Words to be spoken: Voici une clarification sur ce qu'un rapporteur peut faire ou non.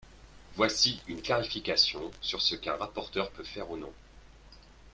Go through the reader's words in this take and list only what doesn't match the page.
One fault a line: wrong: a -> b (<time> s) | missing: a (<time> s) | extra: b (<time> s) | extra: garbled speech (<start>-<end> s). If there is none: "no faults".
no faults